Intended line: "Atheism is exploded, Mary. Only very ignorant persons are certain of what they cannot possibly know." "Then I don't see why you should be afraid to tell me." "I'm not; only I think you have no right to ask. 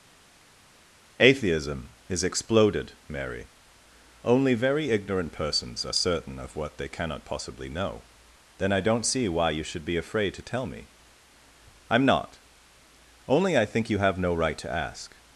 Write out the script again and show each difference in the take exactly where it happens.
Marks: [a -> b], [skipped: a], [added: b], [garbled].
"Atheism is exploded, Mary. Only very ignorant persons are certain of what they cannot possibly know." "Then I don't see why you should be afraid to tell me." "I'm not; only I think you have no right to ask.